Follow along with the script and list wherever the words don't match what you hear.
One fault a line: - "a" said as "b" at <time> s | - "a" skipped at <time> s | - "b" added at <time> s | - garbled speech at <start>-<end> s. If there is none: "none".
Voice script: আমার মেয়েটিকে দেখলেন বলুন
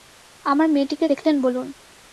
none